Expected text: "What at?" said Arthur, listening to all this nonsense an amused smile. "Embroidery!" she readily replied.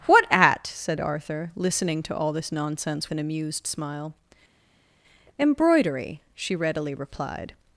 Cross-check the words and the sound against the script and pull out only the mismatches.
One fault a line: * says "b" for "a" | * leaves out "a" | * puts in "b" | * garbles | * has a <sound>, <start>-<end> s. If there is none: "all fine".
all fine